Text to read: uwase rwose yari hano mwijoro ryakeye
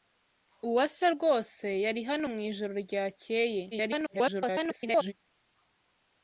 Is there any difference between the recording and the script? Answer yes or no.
yes